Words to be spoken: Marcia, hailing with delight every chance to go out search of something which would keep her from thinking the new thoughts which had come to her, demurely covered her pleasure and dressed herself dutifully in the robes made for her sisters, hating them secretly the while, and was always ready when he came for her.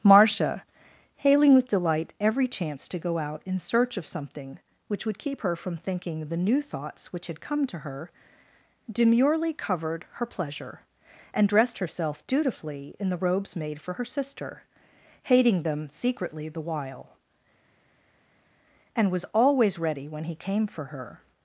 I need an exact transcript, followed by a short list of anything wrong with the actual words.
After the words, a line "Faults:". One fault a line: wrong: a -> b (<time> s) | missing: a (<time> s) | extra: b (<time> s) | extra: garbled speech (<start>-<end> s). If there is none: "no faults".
Marcia, hailing with delight every chance to go out in search of something which would keep her from thinking the new thoughts which had come to her, demurely covered her pleasure and dressed herself dutifully in the robes made for her sister, hating them secretly the while, and was always ready when he came for her.
Faults:
extra: in (3.4 s)
wrong: sisters -> sister (14.0 s)